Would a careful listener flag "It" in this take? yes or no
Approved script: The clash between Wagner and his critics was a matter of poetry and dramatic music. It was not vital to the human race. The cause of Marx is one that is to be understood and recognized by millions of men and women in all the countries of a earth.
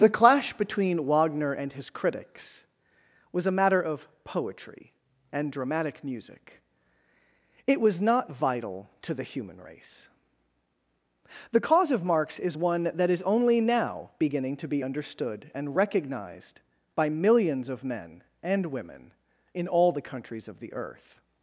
no